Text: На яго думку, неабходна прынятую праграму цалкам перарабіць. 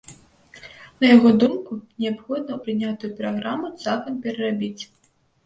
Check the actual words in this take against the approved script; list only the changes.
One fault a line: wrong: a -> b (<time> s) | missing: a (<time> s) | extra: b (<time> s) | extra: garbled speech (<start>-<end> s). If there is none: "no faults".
no faults